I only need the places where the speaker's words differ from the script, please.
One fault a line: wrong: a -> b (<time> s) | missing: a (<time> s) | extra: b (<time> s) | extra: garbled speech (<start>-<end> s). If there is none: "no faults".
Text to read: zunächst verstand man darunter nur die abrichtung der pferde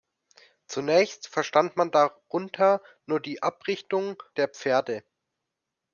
no faults